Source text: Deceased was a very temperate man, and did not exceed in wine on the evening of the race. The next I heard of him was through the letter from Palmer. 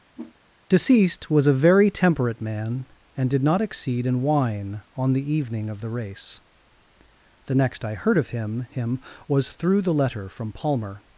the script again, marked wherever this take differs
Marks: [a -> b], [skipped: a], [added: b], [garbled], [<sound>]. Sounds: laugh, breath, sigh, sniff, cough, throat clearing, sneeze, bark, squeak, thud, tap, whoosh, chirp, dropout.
[whoosh] Deceased was a very temperate man, and did not exceed in wine on the evening of the race. The next I heard of him [added: him] was through the letter from Palmer.